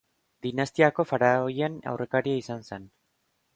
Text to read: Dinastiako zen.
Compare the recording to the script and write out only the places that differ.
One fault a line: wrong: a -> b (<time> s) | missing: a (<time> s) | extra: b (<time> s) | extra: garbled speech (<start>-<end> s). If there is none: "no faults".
extra: faraoien aurrekaria izan (1.1 s)